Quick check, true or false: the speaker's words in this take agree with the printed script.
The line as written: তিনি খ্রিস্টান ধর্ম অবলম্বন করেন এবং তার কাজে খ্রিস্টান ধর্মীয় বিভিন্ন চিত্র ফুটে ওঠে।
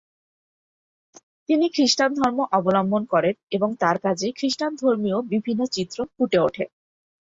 true